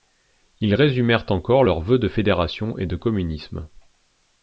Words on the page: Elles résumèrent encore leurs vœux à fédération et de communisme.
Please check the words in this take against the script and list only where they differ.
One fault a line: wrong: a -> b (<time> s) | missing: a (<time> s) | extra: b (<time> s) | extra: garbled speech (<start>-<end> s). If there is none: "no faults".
wrong: Elles -> Ils (0.6 s)
wrong: à -> de (2.0 s)